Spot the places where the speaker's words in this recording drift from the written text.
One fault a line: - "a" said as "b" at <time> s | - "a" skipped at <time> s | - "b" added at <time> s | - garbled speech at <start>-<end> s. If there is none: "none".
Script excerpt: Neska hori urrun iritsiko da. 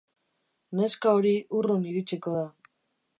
none